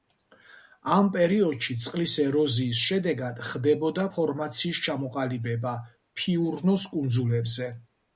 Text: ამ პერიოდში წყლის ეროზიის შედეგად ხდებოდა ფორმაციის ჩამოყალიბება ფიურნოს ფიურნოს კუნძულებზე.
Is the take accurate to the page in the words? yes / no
no